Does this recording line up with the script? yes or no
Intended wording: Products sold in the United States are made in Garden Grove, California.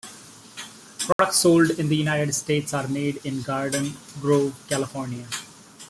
yes